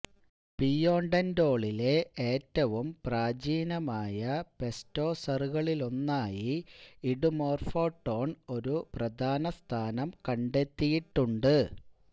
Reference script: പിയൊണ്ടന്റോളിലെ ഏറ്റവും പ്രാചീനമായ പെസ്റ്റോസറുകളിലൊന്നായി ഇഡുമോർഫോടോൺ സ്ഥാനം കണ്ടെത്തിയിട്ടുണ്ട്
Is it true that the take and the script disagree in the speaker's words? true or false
true